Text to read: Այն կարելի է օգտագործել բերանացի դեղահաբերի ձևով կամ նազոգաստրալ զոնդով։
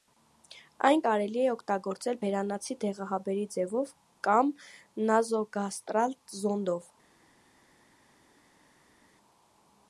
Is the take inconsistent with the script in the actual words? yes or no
no